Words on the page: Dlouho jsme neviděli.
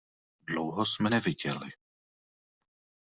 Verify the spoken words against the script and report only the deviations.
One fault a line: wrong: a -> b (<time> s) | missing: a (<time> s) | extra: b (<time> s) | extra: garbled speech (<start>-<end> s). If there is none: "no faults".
no faults